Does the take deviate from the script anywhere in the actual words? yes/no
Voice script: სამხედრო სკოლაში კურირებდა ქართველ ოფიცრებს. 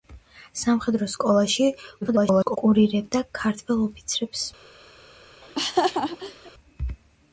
yes